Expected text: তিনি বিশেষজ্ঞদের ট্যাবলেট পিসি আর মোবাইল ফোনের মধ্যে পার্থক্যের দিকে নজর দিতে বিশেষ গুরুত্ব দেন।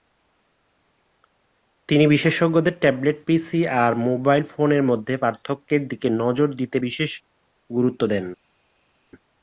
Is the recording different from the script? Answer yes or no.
no